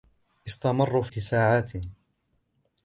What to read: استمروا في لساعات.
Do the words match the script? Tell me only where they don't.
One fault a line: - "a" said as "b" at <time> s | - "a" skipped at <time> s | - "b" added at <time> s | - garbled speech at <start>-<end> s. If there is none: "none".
none